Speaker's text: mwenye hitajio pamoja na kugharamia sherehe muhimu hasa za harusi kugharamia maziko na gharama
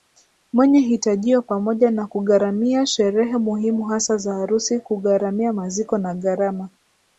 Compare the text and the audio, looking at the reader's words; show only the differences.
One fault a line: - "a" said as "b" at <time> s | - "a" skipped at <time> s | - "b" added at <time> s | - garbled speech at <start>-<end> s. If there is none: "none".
none